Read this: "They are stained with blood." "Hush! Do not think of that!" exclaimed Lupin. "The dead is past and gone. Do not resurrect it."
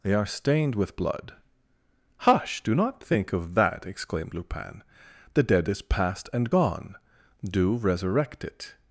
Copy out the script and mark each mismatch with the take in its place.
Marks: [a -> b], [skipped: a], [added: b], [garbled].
"They are stained with blood." "Hush! Do not think of that!" exclaimed Lupin. "The dead is past and gone. Do [skipped: not] resurrect it."